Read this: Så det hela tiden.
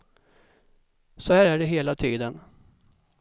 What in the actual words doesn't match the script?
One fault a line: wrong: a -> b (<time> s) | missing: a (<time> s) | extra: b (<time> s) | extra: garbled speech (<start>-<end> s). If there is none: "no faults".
extra: här är (1.3 s)